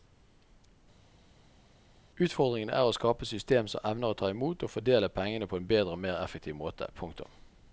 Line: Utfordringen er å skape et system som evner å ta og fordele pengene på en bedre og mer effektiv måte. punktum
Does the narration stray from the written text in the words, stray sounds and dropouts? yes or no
yes